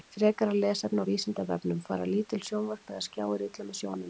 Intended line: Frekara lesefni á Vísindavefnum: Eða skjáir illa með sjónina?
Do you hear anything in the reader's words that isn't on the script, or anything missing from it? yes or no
yes